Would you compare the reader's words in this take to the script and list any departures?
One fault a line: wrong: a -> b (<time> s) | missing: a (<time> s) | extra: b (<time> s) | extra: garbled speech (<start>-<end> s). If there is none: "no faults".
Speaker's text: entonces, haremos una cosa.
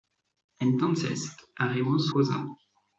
missing: una (2.1 s)